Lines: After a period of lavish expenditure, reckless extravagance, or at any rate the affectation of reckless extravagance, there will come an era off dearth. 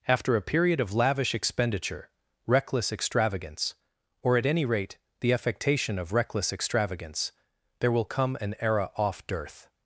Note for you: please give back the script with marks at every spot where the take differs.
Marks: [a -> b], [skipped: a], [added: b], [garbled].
After a period of lavish expenditure, reckless extravagance, or at any rate the affectation of reckless extravagance, there will come an era off dearth.